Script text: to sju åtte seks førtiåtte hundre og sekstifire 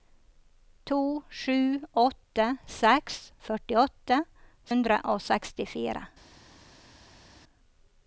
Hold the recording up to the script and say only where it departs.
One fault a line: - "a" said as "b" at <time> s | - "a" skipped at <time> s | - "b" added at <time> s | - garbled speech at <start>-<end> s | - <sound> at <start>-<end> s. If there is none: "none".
none